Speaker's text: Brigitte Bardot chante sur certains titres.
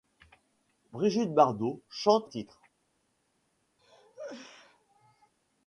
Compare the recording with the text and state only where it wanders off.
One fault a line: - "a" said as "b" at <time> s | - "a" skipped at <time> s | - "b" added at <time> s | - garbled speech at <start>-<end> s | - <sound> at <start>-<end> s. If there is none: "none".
- "sur certains" skipped at 2.3 s
- cough at 3.8-5.3 s